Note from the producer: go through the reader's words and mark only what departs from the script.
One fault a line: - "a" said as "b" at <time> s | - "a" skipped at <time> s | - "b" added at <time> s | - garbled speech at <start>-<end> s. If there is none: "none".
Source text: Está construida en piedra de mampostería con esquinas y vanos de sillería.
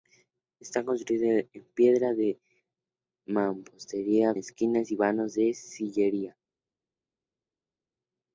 - "con" skipped at 4.3 s